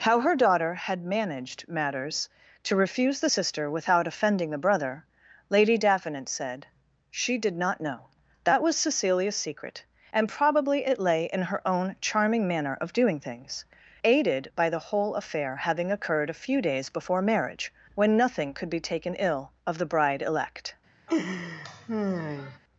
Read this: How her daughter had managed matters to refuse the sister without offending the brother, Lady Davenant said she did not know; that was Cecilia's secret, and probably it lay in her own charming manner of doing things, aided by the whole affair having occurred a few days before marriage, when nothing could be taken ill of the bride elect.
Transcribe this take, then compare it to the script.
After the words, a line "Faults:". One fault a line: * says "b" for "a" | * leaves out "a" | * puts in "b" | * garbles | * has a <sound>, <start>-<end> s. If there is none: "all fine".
How her daughter had managed matters to refuse the sister without offending the brother, Lady Davenant said she did not know; that was Cecilia's secret, and probably it lay in her own charming manner of doing things, aided by the whole affair having occurred a few days before marriage, when nothing could be taken ill of the bride elect.
Faults:
* has a laugh, 21.1-22.6 s